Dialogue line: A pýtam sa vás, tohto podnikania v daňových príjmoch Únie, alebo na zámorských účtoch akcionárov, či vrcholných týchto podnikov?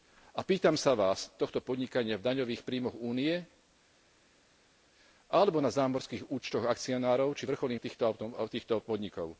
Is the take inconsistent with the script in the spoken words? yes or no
no